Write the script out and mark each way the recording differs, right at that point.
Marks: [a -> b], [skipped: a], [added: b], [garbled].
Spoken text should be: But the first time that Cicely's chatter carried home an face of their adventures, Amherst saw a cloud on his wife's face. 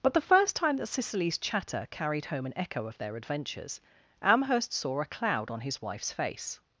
But the first time that Cicely's chatter carried home an [face -> echo] of their adventures, Amherst saw a cloud on his wife's face.